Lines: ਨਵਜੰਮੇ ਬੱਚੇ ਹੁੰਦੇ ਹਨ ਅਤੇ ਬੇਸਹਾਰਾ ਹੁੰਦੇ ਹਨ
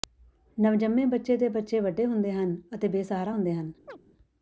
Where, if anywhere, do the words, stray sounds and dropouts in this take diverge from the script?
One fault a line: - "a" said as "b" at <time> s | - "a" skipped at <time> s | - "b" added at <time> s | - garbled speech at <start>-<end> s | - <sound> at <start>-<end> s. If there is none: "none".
- "ਦੇ ਬੱਚੇ ਵੱਡੇ" added at 1.4 s
- chirp at 3.9-4.0 s